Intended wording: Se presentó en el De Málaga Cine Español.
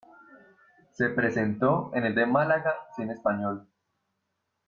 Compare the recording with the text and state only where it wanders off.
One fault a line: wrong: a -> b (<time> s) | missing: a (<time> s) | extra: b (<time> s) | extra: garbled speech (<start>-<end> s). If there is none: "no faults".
no faults